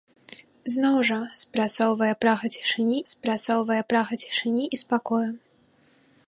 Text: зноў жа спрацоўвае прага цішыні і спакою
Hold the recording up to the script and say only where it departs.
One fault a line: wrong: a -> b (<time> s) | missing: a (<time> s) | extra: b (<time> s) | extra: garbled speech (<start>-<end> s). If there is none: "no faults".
extra: спрацоўвае прага цішыні (3.1 s)